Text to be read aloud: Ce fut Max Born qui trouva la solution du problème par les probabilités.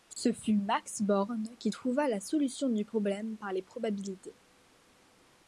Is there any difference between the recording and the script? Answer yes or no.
no